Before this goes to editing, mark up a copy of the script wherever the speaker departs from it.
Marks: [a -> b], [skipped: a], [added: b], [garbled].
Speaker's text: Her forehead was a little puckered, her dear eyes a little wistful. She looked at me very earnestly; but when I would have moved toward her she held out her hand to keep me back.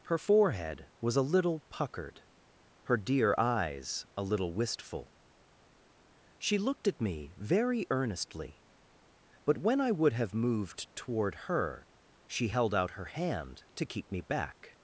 Her forehead was a little puckered, her dear eyes a little wistful. She looked at me very earnestly; but when I would have moved toward her she held out her hand to keep me back.